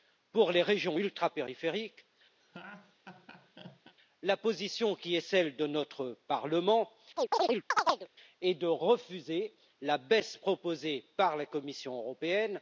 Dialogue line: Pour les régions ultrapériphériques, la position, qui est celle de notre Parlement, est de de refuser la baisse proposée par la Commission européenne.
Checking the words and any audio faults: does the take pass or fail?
fail